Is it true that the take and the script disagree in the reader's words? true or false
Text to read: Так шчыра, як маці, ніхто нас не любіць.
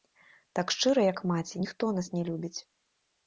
false